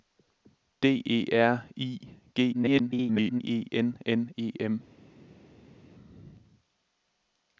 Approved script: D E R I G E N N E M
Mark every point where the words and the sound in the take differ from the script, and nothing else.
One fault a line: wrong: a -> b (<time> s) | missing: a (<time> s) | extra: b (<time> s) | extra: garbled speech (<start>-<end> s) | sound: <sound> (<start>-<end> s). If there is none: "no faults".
extra: garbled speech (2.5-3.4 s)